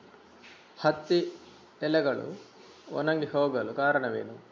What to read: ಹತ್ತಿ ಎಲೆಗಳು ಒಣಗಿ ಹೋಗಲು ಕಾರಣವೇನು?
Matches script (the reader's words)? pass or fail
pass